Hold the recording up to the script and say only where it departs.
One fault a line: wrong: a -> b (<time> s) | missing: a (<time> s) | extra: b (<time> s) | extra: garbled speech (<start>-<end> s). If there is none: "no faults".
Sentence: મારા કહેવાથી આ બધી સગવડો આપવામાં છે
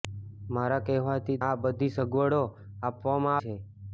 no faults